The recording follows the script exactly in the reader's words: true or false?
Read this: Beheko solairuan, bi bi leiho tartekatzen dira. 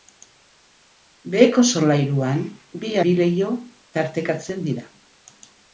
true